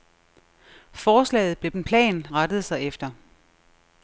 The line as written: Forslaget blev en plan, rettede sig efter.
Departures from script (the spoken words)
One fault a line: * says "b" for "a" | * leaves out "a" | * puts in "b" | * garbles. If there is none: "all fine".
all fine